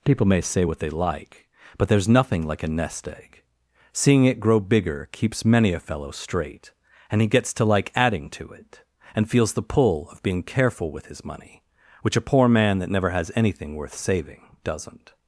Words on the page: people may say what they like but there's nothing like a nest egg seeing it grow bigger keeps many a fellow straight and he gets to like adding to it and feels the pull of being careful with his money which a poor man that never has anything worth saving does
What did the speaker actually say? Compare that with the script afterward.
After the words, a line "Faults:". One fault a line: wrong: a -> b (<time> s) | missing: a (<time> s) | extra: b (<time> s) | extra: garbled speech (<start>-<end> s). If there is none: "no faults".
people may say what they like but there's nothing like a nest egg seeing it grow bigger keeps many a fellow straight and he gets to like adding to it and feels the pull of being careful with his money which a poor man that never has anything worth saving doesn't
Faults:
wrong: does -> doesn't (14.6 s)